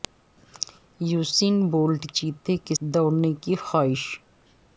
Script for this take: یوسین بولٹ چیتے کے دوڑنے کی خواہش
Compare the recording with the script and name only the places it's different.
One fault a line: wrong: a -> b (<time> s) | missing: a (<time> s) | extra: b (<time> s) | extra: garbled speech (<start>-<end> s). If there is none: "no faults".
no faults